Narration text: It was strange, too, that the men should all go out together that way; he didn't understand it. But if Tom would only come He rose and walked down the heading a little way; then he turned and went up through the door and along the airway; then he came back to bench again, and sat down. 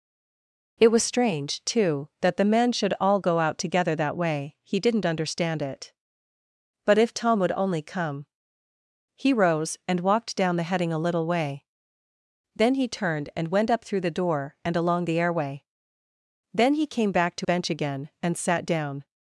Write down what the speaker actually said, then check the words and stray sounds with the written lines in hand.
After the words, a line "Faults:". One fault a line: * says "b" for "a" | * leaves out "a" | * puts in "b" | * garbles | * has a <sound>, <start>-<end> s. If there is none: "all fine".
It was strange, too, that the men should all go out together that way; he didn't understand it. But if Tom would only come He rose and walked down the heading a little way; then he turned and went up through the door and along the airway; then he came back to bench again, and sat down.
Faults:
all fine